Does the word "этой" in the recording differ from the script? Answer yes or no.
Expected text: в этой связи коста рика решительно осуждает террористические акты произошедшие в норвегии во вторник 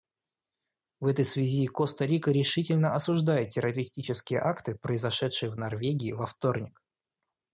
no